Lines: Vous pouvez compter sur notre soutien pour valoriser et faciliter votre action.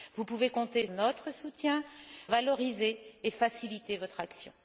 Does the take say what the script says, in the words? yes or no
no